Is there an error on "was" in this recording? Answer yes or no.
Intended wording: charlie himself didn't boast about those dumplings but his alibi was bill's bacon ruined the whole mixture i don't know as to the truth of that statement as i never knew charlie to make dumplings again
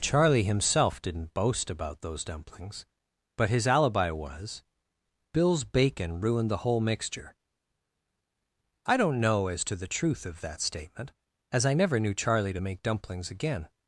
no